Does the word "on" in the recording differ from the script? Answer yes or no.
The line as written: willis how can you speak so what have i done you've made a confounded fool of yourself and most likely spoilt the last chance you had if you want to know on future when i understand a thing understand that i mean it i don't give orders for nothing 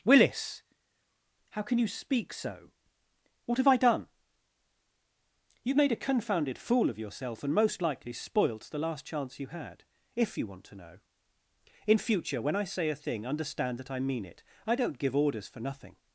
yes